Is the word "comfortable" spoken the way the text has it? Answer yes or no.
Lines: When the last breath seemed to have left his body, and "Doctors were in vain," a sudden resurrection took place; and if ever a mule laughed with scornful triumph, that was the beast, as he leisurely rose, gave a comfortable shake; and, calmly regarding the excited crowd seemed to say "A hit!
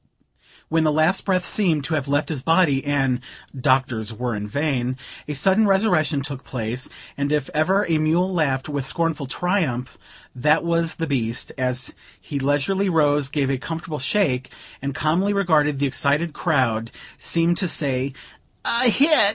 yes